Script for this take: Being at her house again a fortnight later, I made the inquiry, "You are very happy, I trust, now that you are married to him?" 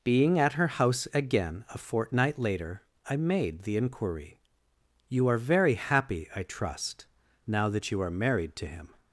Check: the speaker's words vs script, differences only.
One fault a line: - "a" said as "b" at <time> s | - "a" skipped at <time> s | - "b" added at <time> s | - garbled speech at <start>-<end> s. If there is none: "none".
none